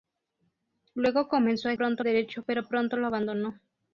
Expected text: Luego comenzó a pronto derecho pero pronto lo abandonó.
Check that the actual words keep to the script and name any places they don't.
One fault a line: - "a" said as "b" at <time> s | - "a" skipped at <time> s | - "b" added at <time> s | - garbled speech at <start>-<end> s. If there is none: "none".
none